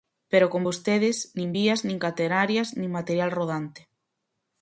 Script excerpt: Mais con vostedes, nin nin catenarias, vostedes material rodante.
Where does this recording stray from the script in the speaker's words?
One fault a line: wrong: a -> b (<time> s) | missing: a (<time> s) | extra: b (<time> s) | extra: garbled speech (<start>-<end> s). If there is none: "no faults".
wrong: Mais -> Pero (0.3 s)
extra: vías (1.6 s)
wrong: vostedes -> nin (2.8 s)